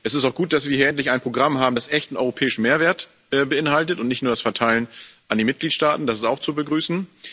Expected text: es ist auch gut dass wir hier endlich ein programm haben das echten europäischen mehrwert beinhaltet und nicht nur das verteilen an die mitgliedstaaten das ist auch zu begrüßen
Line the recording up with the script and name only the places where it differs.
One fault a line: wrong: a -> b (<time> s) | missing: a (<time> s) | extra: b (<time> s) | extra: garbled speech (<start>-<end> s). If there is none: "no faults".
no faults